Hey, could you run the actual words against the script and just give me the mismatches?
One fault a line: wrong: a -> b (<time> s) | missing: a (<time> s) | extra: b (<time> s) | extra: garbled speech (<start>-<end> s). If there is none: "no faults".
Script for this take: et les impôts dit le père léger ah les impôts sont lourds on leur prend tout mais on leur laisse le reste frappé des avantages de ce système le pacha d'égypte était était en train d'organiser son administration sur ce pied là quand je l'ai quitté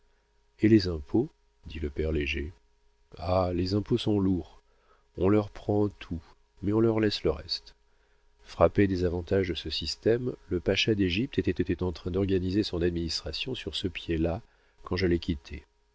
no faults